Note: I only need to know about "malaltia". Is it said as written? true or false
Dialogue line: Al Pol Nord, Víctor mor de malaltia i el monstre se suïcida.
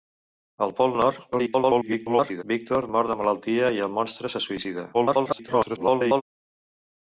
true